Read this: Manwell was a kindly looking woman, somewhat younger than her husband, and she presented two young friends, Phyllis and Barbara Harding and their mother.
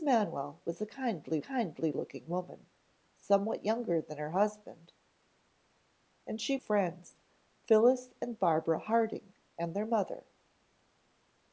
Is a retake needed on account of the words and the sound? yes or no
yes